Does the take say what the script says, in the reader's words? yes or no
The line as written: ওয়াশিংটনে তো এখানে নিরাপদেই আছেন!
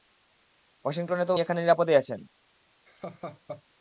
yes